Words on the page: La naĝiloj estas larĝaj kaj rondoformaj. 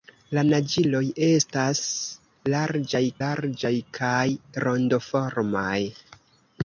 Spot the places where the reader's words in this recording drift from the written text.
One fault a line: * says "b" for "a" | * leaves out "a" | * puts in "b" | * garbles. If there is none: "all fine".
* puts in "larĝaj"